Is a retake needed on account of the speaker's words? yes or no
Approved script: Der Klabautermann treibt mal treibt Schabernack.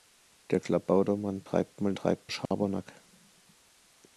no